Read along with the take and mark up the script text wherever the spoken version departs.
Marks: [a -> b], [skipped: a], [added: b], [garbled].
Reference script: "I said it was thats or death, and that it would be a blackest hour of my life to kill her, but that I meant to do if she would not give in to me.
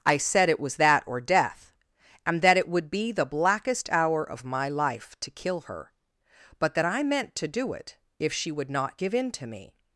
"I said it was [thats -> that] or death, and that it would be [a -> the] blackest hour of my life to kill her, but that I meant to do [added: it] if she would not give in to me.